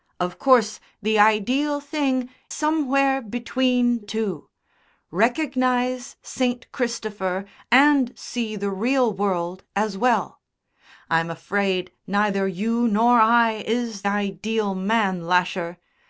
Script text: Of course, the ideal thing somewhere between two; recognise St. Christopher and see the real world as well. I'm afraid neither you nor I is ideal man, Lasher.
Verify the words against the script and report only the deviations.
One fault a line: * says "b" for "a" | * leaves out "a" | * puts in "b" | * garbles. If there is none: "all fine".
all fine